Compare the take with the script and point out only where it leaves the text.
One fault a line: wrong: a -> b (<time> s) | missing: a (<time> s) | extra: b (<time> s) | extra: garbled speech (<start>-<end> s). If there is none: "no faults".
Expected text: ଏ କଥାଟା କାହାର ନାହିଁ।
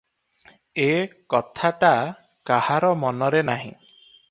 extra: ମନରେ (3.0 s)